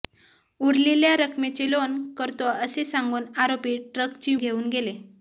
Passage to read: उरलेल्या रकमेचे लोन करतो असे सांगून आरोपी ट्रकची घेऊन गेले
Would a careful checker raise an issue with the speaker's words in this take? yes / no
no